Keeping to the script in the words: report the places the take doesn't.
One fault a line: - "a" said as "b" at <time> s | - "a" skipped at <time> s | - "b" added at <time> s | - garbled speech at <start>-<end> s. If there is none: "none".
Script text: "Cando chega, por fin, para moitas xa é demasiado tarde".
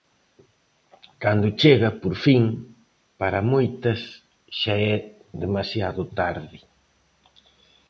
none